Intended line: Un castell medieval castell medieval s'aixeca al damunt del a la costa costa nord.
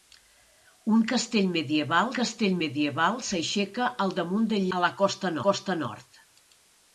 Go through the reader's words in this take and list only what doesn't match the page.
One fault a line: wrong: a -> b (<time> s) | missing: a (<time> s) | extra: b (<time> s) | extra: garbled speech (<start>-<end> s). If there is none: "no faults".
no faults